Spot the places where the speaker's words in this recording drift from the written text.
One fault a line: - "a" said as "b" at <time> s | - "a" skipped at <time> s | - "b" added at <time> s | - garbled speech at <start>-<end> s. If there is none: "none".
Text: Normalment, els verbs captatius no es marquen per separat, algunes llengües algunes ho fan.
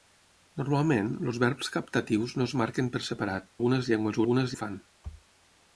none